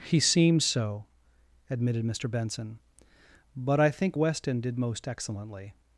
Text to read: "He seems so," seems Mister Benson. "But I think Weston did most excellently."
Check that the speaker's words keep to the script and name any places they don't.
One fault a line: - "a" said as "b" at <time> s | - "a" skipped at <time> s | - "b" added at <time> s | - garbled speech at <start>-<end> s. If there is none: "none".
- "seems" said as "admitted" at 1.7 s